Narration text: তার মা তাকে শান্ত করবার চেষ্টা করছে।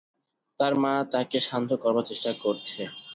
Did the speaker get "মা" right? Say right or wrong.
right